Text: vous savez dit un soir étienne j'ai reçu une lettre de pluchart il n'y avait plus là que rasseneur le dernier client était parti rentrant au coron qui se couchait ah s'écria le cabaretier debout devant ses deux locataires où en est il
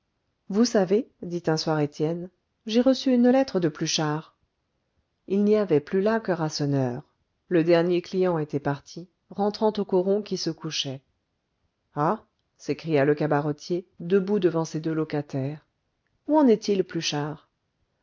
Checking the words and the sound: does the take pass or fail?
pass